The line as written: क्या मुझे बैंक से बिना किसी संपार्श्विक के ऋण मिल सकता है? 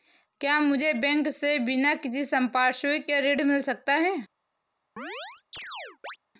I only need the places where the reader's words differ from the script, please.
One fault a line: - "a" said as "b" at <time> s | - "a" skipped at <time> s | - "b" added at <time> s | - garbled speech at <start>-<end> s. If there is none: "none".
none